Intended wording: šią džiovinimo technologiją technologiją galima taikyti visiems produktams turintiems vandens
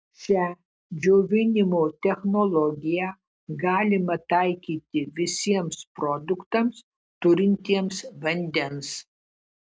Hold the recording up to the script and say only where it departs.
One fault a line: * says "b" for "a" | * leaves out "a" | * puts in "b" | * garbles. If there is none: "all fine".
* leaves out "technologiją"